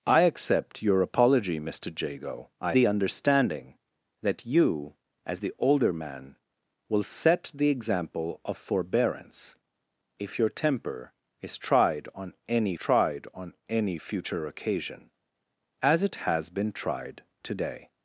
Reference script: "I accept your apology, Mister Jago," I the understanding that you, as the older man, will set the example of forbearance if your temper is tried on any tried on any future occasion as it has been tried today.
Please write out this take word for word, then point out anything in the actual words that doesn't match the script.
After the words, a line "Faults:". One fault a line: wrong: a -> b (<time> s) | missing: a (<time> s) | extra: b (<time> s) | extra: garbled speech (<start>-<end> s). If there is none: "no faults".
"I accept your apology, Mister Jago," I the understanding that you, as the older man, will set the example of forbearance if your temper is tried on any tried on any future occasion as it has been tried today.
Faults:
no faults